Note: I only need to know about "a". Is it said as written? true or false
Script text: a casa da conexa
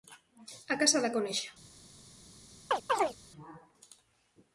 true